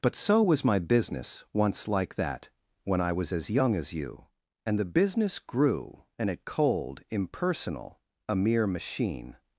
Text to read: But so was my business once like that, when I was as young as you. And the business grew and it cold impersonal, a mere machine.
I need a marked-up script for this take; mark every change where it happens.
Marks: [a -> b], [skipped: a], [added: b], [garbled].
But so was my business once like that, when I was as young as you. And the business grew and it cold impersonal, a mere machine.